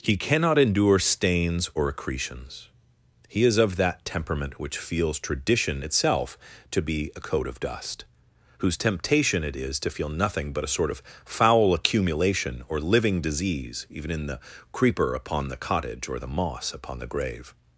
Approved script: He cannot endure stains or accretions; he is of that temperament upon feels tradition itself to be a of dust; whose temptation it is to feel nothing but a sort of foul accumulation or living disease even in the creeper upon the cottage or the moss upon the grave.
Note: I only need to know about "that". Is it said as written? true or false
true